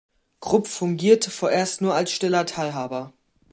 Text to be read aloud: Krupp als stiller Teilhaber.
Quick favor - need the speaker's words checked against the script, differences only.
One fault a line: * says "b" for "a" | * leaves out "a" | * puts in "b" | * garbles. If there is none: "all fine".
* puts in "fungierte vorerst nur"